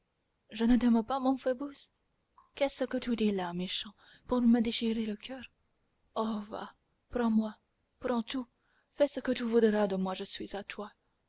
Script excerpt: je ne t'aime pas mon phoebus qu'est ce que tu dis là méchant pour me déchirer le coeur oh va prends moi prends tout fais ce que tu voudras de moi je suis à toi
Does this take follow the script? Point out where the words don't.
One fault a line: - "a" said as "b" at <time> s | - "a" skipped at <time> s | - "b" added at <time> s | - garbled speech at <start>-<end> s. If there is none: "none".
none